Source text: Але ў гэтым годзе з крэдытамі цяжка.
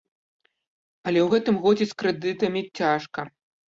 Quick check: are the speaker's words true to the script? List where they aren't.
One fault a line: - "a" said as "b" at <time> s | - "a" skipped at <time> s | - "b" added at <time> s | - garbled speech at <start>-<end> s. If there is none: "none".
none